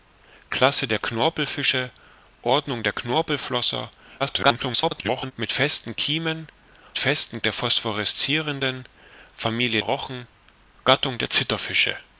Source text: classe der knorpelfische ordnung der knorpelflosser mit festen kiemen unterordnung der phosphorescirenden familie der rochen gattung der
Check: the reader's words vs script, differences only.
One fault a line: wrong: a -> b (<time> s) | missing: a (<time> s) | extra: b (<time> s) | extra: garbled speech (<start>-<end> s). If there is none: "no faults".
extra: garbled speech (4.2-5.3 s)
wrong: unterordnung -> festen (7.0 s)
missing: der (9.8 s)